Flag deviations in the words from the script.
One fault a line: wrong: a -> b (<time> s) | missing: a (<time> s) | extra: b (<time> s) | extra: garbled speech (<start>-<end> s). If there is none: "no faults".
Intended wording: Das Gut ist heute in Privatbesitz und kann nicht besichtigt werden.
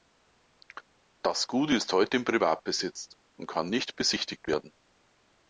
no faults